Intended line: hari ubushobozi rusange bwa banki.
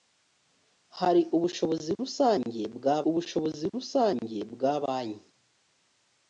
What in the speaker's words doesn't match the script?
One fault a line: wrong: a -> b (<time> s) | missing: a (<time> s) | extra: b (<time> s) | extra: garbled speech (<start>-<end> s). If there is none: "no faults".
extra: ubushobozi rusange bwa (3.1 s)